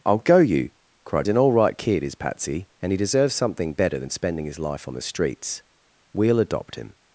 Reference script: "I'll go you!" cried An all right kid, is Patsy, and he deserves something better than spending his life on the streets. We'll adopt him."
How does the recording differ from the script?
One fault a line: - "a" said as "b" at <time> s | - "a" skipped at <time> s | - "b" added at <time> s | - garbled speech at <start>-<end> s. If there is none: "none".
none